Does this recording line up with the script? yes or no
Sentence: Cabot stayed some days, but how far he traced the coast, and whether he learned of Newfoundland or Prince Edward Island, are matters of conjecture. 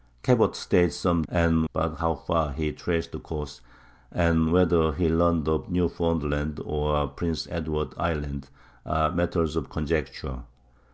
no